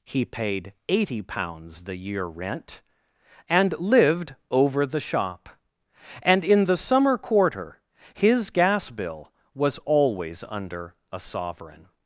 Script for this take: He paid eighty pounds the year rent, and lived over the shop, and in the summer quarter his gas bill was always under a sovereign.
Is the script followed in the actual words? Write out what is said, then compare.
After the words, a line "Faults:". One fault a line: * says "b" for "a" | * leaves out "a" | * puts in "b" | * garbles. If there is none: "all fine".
He paid eighty pounds the year rent, and lived over the shop, and in the summer quarter his gas bill was always under a sovereign.
Faults:
all fine